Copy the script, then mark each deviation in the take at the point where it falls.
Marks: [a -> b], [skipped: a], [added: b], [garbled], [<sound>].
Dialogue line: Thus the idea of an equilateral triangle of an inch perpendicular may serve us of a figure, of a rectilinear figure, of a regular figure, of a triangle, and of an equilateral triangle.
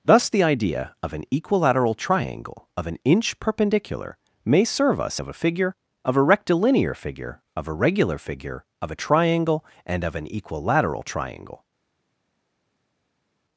Thus the idea of an equilateral triangle of an inch perpendicular may serve us of a figure, of a rectilinear figure, of a regular figure, of a triangle, and of an equilateral triangle.